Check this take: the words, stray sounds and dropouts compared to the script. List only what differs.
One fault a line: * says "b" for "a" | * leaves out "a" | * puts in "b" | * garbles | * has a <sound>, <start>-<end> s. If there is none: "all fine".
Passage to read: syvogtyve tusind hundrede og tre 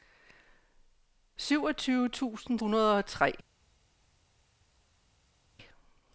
all fine